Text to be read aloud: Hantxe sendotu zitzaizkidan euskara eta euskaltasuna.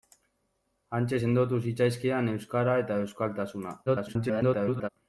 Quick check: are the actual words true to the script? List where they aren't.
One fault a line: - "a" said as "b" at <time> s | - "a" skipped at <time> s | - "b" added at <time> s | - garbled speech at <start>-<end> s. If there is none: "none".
- garbled speech at 3.9-4.9 s